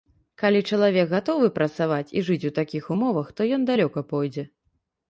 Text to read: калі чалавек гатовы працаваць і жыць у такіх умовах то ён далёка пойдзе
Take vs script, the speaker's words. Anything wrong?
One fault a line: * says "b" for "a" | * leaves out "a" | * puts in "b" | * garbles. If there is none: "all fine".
all fine